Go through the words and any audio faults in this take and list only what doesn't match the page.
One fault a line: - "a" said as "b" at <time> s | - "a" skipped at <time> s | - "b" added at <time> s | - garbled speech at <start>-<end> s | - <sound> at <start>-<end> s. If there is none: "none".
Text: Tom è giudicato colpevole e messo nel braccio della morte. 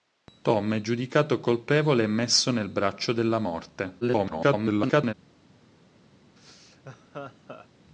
- garbled speech at 4.0-5.1 s
- laugh at 6.4-7.7 s